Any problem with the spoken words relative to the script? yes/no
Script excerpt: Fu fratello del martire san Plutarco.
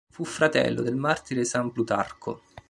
no